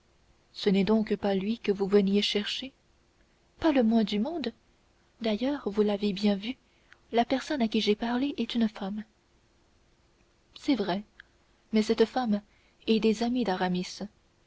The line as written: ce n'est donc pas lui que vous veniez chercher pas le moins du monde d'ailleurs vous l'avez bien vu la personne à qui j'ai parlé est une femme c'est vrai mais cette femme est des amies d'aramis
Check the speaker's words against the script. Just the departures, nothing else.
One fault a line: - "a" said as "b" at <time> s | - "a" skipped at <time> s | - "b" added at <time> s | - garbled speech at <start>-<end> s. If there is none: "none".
none